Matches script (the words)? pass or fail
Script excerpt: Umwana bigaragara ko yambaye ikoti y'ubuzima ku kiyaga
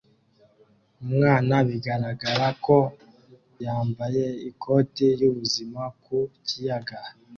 pass